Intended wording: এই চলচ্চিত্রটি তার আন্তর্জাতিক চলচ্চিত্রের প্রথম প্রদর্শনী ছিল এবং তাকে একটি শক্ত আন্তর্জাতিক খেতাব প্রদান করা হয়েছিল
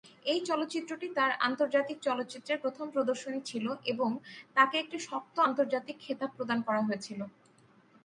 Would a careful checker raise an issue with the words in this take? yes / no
no